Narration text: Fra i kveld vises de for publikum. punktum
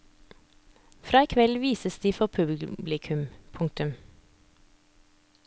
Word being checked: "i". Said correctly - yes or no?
yes